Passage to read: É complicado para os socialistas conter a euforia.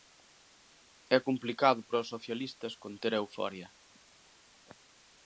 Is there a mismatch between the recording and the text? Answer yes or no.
no